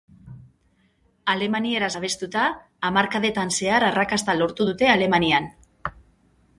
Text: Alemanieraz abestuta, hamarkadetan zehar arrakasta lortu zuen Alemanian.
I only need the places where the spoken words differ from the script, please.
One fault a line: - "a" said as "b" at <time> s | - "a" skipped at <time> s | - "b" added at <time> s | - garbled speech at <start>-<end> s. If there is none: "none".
- "zuen" said as "dute" at 4.7 s